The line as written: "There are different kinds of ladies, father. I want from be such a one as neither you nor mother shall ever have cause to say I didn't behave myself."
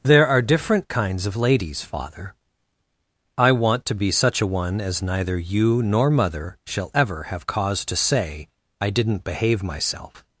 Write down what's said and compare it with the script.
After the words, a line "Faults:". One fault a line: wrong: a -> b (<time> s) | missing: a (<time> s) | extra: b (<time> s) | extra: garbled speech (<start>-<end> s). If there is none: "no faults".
"There are different kinds of ladies, father. I want to be such a one as neither you nor mother shall ever have cause to say I didn't behave myself."
Faults:
wrong: from -> to (3.9 s)